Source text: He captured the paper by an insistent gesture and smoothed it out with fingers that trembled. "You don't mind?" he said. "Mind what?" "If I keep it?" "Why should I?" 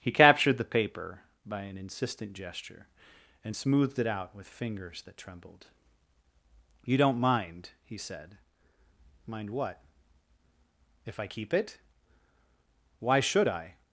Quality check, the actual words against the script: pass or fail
pass